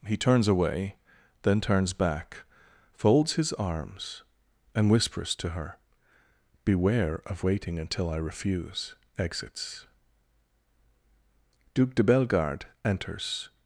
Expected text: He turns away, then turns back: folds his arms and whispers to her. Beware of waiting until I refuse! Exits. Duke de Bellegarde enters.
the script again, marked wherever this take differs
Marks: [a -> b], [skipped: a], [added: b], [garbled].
He turns away, then turns back: folds his arms and whispers to her. Beware of waiting until I refuse! Exits. Duke de Bellegarde enters.